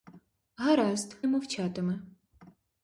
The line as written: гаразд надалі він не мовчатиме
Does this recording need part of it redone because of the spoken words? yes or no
yes